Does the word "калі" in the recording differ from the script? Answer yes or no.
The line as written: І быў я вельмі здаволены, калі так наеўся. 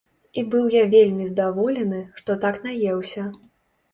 yes